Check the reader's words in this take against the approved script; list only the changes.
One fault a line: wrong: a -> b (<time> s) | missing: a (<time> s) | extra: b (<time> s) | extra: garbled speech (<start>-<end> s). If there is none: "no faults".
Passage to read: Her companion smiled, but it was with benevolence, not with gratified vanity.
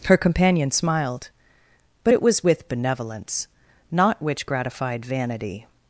wrong: with -> which (4.2 s)